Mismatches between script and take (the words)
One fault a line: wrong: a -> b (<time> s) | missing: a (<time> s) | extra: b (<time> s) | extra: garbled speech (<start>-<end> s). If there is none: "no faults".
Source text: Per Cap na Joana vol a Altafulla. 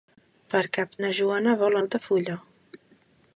no faults